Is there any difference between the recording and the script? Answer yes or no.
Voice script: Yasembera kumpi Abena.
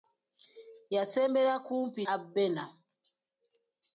no